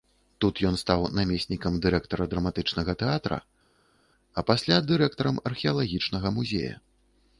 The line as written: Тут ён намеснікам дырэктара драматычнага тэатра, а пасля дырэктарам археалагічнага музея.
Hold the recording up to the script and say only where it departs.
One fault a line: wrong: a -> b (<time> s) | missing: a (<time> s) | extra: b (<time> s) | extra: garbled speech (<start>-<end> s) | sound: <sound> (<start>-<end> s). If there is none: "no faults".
extra: стаў (0.8 s)